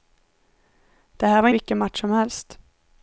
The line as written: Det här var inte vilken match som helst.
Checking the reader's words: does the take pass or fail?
fail